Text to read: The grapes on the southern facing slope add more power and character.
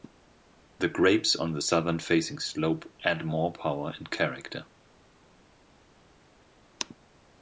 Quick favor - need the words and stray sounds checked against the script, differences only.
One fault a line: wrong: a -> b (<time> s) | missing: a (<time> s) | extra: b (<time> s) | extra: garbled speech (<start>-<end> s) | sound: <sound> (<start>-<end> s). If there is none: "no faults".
no faults